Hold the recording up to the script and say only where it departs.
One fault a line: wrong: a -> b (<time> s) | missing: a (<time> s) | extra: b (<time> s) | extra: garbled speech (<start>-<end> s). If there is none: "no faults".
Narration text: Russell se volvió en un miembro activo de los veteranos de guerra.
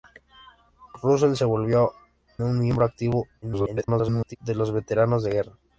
missing: en (1.9 s)
extra: garbled speech (3.4-4.4 s)